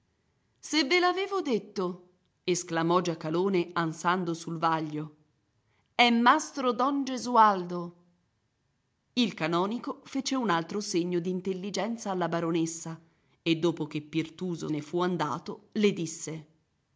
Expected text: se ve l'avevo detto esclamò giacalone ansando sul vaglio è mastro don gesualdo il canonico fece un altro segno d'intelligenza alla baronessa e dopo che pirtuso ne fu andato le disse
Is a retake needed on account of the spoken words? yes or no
no